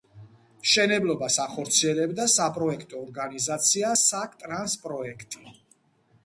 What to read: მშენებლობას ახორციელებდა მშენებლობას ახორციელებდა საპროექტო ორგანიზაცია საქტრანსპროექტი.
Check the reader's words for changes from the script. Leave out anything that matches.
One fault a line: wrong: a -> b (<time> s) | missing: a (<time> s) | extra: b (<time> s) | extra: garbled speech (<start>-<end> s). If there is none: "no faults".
missing: მშენებლობას ახორციელებდა (2.2 s)